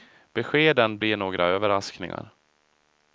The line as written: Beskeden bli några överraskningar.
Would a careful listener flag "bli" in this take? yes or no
no